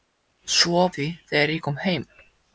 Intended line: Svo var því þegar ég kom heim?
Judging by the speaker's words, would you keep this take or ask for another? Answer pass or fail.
pass